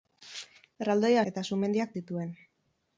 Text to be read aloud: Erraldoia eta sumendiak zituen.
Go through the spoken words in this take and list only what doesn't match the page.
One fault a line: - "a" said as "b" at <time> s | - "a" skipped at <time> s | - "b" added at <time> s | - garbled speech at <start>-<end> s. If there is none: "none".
none